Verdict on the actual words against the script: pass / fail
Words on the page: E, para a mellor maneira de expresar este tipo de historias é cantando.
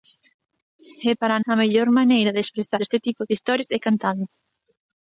pass